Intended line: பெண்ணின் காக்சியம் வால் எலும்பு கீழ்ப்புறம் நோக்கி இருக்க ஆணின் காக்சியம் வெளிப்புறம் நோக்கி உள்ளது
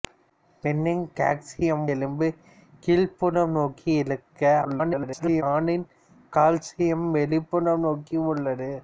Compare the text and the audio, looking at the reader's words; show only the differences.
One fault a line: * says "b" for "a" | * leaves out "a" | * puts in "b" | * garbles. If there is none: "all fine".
* leaves out "வால்"
* garbles